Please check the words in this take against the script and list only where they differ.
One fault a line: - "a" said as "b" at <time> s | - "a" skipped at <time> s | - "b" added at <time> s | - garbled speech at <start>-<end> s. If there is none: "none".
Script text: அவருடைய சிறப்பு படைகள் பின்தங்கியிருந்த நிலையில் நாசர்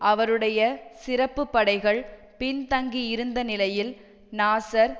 none